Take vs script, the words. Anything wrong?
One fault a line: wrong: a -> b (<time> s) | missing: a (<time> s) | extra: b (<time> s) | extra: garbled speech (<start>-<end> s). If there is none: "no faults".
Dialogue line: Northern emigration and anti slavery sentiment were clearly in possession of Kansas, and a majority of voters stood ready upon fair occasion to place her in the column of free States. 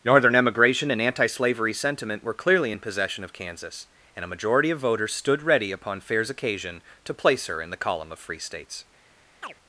wrong: fair -> fairs (6.0 s)